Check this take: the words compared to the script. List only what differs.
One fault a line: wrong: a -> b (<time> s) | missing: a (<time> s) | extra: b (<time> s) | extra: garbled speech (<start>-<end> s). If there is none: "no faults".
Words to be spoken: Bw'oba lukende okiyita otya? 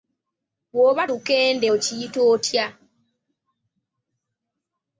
no faults